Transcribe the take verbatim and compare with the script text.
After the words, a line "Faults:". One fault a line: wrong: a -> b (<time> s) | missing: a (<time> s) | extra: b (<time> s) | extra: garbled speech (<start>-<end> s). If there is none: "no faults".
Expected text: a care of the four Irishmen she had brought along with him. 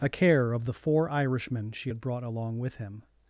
a care of the four Irishmen she had brought along with him.
Faults:
no faults